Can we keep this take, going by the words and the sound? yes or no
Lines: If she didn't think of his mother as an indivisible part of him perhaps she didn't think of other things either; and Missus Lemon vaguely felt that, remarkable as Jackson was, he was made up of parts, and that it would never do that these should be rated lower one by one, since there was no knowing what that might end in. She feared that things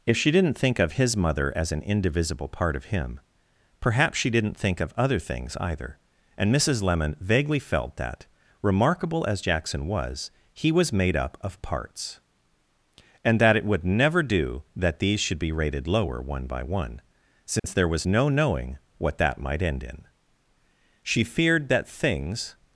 no